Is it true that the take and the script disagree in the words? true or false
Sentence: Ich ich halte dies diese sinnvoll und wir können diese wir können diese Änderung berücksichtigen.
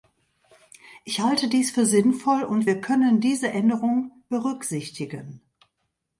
true